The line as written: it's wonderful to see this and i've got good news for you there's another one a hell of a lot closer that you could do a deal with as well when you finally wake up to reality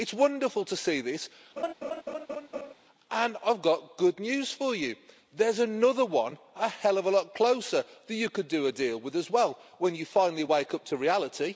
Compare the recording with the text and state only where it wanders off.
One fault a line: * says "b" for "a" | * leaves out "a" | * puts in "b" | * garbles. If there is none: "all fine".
all fine